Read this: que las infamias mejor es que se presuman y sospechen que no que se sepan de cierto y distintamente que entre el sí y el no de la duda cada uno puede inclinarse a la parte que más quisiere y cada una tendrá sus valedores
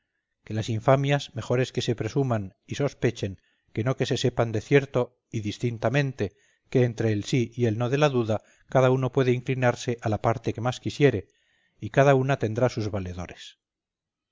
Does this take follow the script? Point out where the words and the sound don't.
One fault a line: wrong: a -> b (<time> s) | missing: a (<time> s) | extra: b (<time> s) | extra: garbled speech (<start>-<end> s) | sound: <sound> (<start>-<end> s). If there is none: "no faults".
no faults